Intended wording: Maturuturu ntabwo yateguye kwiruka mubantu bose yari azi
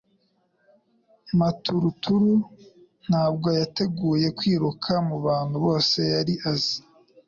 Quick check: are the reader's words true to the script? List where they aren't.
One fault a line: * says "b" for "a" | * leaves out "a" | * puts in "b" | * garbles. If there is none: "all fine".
all fine